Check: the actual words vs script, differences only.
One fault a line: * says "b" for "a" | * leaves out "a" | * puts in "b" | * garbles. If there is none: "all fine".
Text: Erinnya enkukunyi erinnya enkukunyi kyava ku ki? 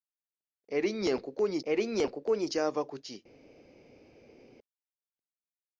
all fine